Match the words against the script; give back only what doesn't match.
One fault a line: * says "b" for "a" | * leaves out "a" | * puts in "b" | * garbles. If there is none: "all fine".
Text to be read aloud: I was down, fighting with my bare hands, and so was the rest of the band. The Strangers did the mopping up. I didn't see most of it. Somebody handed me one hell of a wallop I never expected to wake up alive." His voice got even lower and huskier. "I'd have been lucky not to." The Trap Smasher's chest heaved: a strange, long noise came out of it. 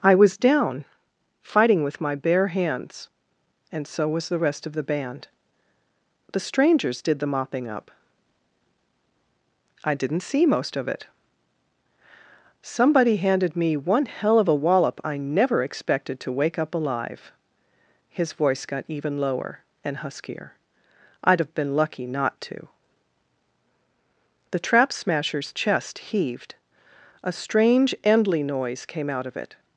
* says "endly" for "long"